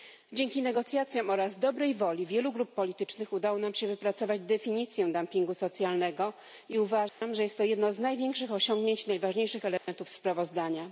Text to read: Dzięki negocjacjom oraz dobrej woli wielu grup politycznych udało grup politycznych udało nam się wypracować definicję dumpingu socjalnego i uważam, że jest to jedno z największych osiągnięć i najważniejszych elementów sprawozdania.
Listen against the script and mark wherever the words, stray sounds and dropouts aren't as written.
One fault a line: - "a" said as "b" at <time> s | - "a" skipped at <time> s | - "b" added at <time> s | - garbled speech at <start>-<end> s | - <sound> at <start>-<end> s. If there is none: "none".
- "grup politycznych udało" skipped at 3.6 s
- dropout at 7.1-7.2 s
- dropout at 9.8-9.9 s